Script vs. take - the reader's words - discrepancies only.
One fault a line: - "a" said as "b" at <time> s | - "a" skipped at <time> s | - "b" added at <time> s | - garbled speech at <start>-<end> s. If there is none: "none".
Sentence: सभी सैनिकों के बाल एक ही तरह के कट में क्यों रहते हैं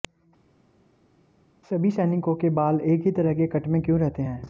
none